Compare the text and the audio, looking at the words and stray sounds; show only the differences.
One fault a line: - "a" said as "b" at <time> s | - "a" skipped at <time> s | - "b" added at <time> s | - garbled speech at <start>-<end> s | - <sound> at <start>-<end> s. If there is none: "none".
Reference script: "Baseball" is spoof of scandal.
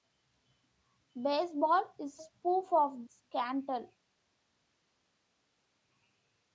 none